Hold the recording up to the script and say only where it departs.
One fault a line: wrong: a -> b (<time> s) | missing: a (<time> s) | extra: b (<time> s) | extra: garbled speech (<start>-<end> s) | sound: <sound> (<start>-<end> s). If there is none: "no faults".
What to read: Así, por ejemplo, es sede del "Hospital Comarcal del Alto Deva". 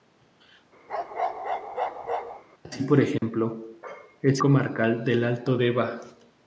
sound: bark (0.9-2.4 s)
sound: dropout (3.2-3.2 s)
missing: sede del Hospital (4.4 s)